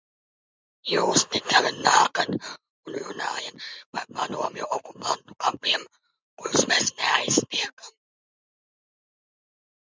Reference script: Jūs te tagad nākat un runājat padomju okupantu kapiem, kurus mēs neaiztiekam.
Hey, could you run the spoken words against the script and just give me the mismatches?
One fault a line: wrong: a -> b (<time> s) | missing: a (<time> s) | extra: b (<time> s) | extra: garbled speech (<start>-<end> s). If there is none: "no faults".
extra: par (4.0 s)